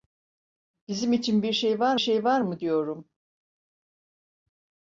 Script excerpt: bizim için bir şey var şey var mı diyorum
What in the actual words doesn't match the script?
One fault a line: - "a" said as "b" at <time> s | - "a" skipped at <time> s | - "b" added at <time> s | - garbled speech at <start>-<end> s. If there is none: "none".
none